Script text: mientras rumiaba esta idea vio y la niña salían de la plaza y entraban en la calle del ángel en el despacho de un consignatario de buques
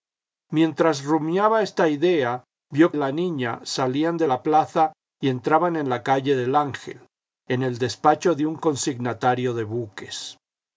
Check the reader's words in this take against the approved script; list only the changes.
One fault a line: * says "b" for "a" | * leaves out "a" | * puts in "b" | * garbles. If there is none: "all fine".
all fine